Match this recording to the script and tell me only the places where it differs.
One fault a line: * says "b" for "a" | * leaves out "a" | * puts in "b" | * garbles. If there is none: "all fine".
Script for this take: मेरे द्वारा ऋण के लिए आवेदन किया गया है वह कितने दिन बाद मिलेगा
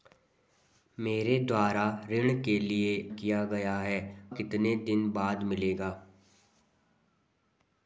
* leaves out "आवेदन"
* leaves out "वह"